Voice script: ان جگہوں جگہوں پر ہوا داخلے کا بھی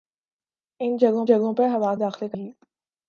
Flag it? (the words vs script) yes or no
no